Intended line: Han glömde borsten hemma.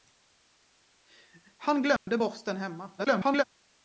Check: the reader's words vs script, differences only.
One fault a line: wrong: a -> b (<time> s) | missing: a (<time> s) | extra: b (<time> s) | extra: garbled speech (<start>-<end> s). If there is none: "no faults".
extra: garbled speech (3.0-3.4 s)